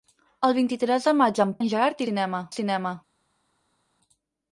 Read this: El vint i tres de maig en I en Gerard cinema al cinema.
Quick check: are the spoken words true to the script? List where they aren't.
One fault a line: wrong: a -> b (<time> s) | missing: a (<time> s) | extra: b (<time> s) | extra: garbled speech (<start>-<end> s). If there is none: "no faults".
no faults